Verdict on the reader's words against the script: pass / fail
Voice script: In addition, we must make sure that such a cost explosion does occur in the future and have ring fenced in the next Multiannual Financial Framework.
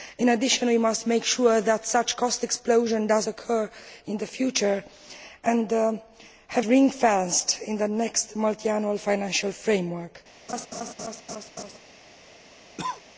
pass